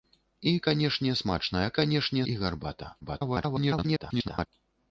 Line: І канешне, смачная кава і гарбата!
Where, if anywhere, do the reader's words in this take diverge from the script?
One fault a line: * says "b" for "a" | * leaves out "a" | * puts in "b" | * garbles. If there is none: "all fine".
* says "канешне" for "кава"
* garbles